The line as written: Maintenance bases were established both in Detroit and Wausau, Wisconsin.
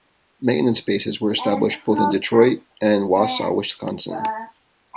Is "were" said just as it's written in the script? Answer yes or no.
yes